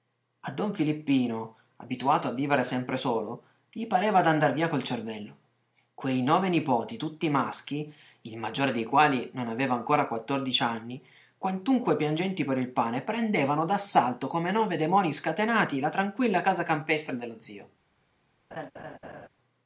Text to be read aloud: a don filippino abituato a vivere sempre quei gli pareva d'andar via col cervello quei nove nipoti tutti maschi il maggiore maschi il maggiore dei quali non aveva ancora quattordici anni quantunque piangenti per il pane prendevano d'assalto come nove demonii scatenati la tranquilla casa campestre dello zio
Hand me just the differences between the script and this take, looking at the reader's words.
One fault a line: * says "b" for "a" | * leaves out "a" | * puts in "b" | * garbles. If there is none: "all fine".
* says "solo" for "quei"
* leaves out "maschi il maggiore"